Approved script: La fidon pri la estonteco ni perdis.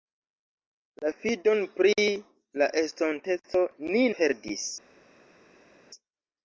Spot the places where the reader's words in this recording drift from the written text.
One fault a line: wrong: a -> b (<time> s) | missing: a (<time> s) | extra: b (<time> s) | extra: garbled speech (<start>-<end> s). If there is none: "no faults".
no faults